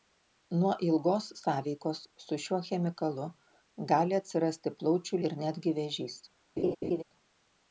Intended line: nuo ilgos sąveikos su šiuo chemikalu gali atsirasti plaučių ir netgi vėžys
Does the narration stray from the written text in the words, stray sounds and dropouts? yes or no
yes